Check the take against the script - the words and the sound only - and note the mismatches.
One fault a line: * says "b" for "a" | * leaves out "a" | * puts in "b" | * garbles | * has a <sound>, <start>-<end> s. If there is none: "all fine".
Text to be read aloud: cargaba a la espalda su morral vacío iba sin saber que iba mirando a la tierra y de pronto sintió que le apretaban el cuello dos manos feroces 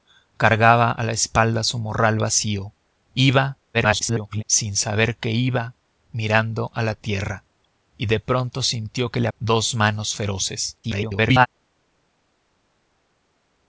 * garbles
* leaves out "apretaban el cuello"
* garbles